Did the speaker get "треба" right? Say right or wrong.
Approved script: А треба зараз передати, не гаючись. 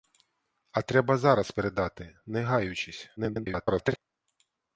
right